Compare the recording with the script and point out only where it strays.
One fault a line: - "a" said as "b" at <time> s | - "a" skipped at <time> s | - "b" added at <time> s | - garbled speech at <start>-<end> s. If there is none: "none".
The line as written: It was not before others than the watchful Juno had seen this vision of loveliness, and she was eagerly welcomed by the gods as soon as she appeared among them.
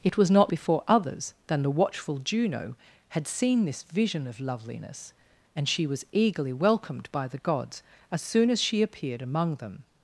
none